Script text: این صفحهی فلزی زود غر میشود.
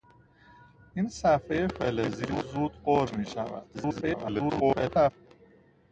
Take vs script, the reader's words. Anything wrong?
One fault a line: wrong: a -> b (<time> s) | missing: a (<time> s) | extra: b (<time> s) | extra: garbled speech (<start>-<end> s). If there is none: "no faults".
extra: garbled speech (3.7-5.1 s)